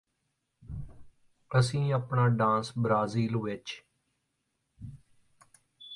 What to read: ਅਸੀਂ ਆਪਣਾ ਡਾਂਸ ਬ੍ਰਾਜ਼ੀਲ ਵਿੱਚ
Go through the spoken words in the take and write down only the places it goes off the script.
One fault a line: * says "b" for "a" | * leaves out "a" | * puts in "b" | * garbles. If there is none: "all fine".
all fine